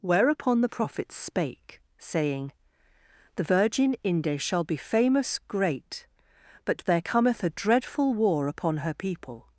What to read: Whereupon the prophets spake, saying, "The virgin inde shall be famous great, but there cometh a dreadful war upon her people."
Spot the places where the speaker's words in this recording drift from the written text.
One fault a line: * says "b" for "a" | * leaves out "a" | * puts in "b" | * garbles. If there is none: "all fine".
all fine